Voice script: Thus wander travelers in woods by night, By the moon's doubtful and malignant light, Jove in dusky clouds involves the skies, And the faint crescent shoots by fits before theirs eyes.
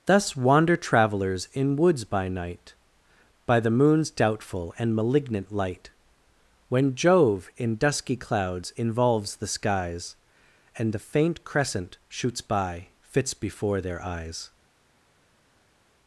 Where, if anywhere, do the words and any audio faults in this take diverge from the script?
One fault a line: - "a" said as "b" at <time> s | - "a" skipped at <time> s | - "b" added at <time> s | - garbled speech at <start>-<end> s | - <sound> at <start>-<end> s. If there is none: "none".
- "When" added at 6.7 s
- "theirs" said as "their" at 13.8 s